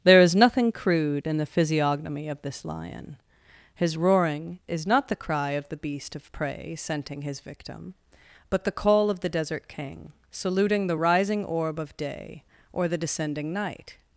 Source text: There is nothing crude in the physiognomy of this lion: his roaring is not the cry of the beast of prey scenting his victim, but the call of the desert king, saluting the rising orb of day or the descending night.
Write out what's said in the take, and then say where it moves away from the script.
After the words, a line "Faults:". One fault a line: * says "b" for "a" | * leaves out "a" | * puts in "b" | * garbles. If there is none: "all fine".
There is nothing crude in the physiognomy of this lion: his roaring is not the cry of the beast of prey scenting his victim, but the call of the desert king, saluting the rising orb of day or the descending night.
Faults:
all fine